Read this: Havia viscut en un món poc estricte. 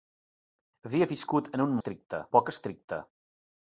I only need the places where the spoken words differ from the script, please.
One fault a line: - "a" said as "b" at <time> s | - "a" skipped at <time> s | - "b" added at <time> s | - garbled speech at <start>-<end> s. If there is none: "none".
- "món" said as "estricte" at 1.8 s